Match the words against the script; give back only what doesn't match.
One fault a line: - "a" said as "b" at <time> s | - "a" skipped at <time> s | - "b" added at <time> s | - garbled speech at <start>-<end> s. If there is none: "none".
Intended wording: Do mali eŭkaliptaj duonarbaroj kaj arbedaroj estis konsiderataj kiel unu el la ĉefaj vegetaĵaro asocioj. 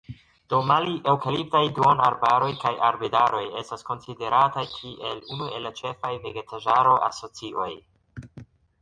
- "estis" said as "estas" at 3.6 s